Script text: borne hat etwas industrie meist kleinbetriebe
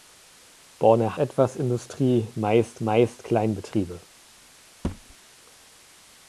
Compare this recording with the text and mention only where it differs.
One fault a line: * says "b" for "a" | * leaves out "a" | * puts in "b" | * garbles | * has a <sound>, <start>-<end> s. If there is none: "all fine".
* leaves out "hat"
* puts in "meist"
* has a thud, 4.8-5.2 s